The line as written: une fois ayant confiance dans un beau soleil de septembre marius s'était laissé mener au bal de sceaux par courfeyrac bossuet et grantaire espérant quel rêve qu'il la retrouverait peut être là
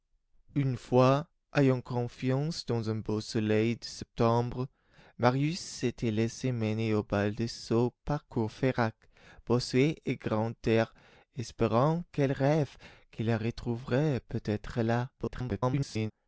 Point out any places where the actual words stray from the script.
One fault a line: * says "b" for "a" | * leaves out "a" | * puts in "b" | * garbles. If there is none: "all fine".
* garbles